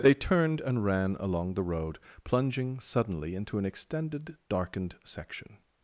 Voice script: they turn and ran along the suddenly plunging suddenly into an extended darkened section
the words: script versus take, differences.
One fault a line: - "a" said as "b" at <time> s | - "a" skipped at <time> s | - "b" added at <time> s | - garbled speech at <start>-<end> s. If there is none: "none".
- "turn" said as "turned" at 0.1 s
- "suddenly" said as "road" at 1.6 s